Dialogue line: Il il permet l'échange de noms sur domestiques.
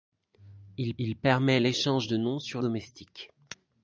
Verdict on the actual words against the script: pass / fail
pass